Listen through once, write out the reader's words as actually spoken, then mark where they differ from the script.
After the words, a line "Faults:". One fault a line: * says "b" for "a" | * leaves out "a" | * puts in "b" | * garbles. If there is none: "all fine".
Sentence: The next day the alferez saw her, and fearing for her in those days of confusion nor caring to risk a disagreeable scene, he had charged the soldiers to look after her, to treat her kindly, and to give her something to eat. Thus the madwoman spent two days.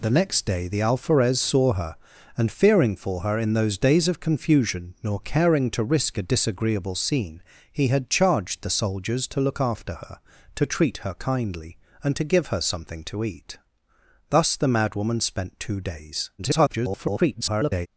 The next day the alferez saw her, and fearing for her in those days of confusion nor caring to risk a disagreeable scene, he had charged the soldiers to look after her, to treat her kindly, and to give her something to eat. Thus the madwoman spent two days. [garbled]
Faults:
* garbles